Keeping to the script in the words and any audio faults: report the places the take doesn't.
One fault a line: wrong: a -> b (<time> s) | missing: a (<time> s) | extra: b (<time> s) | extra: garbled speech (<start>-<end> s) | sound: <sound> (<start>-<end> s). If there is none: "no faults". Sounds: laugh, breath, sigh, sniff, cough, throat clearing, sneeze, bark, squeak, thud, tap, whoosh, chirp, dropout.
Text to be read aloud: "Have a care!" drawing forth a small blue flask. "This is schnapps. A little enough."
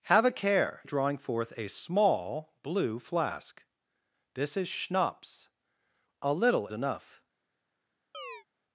sound: chirp (8.1-8.4 s)